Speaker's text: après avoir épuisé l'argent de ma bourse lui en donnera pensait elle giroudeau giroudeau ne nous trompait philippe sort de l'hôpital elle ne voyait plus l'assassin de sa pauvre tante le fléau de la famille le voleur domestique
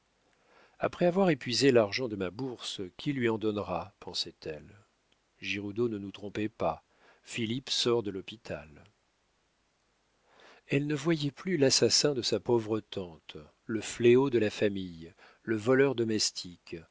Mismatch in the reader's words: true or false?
true